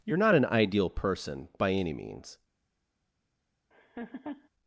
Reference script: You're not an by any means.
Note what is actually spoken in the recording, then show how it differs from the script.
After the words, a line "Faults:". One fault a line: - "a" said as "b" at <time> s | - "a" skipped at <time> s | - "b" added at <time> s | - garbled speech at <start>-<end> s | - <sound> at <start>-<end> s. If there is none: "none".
You're not an ideal person by any means.
Faults:
- "ideal person" added at 0.4 s
- laugh at 3.7-4.5 s